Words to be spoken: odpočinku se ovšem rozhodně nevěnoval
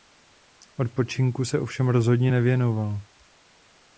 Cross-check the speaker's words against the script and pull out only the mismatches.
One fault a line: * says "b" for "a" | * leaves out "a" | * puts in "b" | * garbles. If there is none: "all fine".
all fine